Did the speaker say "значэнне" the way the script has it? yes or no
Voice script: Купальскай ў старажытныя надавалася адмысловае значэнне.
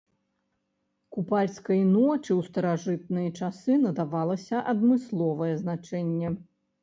yes